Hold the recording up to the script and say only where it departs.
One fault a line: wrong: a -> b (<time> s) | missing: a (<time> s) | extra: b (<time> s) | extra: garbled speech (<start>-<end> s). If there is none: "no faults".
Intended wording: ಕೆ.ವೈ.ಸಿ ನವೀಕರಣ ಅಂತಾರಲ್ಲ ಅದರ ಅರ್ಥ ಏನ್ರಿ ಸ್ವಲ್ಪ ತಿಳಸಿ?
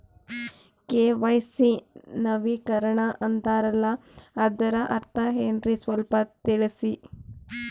no faults